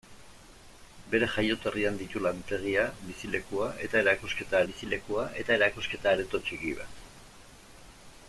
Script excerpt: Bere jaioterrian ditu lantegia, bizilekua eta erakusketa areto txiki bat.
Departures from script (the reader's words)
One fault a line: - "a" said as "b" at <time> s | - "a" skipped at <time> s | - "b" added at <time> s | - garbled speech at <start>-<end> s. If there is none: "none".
- "bizilekua eta erakusketa" added at 4.7 s